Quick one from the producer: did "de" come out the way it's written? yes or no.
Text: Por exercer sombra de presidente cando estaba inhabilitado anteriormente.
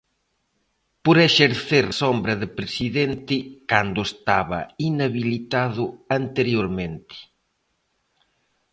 yes